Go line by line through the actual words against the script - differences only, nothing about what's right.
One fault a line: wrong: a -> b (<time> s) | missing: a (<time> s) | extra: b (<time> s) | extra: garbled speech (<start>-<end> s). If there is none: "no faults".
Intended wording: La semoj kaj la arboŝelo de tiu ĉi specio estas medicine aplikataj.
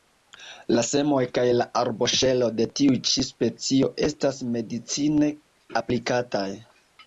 no faults